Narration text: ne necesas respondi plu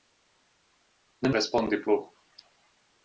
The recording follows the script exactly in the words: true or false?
false